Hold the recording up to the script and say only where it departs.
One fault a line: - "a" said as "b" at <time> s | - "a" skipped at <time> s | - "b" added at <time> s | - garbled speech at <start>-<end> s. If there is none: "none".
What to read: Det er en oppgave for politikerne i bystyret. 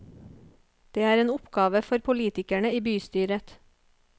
none